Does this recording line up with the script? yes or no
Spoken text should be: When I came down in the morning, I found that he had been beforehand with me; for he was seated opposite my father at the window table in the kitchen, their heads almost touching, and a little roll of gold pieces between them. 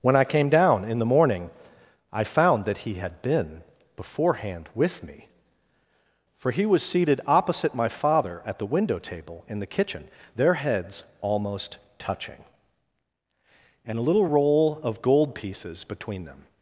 yes